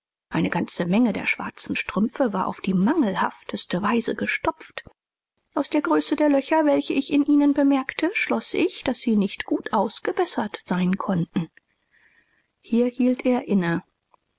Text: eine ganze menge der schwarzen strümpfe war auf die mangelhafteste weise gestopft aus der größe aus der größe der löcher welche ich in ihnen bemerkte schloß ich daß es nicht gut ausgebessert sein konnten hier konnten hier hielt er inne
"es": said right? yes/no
no